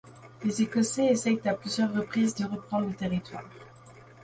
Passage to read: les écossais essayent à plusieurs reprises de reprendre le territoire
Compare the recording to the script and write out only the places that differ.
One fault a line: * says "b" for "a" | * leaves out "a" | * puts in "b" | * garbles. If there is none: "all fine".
all fine